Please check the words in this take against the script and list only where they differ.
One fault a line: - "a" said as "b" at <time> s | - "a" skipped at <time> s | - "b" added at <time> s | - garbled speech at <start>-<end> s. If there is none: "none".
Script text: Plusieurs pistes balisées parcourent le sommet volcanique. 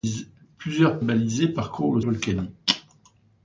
- "pistes" skipped at 1.0 s
- "sommet" skipped at 2.0 s